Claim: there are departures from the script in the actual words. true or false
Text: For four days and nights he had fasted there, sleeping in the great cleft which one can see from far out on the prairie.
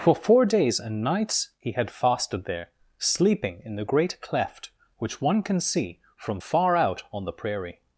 false